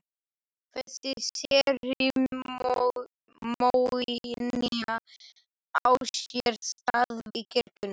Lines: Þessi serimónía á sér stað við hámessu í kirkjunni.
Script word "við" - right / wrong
wrong